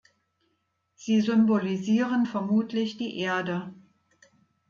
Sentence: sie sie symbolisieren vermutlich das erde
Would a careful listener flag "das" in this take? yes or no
yes